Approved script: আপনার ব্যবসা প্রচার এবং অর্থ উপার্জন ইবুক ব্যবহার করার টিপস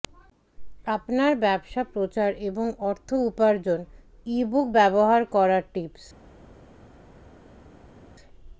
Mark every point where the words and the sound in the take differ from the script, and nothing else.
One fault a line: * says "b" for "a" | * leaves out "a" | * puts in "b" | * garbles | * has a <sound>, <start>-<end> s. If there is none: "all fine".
all fine